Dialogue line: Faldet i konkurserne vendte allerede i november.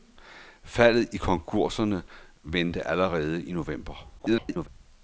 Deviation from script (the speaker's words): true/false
true